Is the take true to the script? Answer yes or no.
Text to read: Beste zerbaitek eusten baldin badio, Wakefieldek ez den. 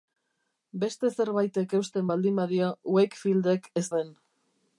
yes